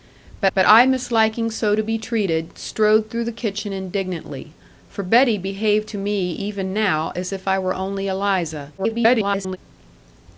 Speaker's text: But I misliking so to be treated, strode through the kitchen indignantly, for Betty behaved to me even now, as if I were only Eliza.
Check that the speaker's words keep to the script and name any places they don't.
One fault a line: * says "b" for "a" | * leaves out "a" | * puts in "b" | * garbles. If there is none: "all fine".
* puts in "but"
* garbles